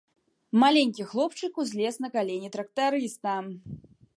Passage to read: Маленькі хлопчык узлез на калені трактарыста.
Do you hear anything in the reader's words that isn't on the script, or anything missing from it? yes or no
no